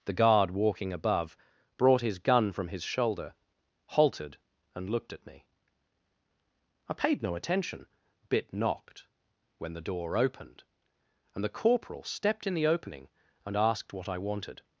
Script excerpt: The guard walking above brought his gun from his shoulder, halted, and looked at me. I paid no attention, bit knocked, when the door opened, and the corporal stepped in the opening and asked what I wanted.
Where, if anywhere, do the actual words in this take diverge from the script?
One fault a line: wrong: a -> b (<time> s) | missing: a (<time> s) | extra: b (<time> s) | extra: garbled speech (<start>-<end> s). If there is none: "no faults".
no faults